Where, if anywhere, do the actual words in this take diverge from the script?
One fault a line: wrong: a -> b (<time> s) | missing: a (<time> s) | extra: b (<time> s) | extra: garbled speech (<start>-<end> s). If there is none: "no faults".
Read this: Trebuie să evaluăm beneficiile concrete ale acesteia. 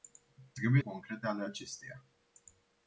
missing: să evaluăm beneficiile (0.8 s)